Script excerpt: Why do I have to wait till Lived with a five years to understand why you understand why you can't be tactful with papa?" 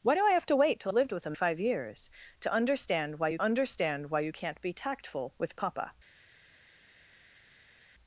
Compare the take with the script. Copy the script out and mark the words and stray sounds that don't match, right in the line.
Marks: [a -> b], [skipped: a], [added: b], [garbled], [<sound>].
Why do I have to wait till Lived with a five years to understand why you understand why you can't be tactful with papa?"